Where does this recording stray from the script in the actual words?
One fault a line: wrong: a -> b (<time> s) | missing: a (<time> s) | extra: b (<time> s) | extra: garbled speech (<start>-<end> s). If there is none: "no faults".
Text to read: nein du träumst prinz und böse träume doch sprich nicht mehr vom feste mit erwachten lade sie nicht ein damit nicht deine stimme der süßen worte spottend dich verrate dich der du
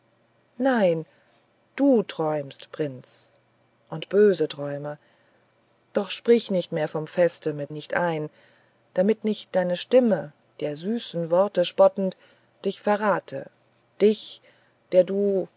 missing: erwachten lade sie (7.7 s)